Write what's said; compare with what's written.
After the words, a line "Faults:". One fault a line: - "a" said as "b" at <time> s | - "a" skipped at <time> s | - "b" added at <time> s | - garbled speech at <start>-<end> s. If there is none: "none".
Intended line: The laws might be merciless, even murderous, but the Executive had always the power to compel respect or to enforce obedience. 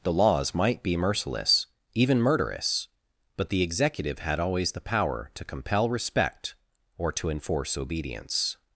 The laws might be merciless, even murderous, but the Executive had always the power to compel respect or to enforce obedience.
Faults:
none